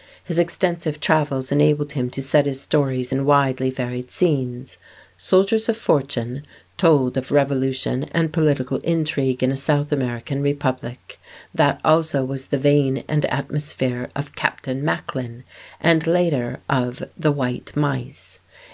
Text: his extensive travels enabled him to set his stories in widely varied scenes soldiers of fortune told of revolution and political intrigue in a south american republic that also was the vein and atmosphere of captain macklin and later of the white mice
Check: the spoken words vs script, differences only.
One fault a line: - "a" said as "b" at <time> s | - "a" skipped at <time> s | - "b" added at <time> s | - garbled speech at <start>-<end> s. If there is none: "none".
none